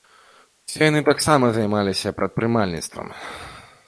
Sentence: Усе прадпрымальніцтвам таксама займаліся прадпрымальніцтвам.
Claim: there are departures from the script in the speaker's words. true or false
true